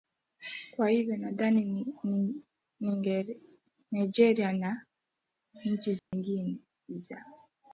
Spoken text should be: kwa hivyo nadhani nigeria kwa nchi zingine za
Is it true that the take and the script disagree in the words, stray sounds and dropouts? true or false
true